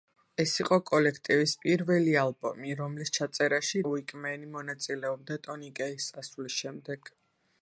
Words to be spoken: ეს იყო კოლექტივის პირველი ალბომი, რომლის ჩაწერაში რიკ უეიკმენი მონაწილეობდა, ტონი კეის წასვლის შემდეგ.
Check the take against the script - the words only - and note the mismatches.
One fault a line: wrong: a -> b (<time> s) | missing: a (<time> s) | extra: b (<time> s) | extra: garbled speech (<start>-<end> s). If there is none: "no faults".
missing: რიკ (3.8 s)